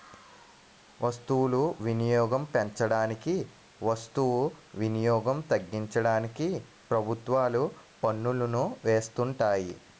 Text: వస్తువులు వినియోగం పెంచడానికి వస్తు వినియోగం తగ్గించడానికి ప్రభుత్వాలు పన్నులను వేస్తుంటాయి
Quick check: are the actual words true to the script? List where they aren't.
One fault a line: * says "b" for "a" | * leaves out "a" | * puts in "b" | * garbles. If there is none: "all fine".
all fine